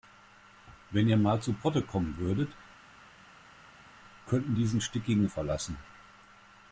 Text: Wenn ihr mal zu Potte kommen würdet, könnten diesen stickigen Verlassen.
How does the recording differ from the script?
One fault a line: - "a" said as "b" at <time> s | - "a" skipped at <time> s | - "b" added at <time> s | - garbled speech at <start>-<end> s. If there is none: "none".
none